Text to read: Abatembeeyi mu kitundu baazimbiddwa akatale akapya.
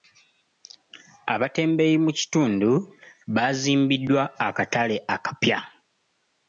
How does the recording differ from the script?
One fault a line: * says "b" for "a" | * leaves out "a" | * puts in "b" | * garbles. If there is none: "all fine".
all fine